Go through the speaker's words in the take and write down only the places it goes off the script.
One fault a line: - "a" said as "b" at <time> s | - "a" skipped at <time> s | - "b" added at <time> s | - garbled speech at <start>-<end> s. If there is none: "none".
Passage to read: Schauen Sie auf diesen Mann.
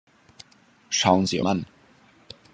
- "auf diesen" skipped at 1.4 s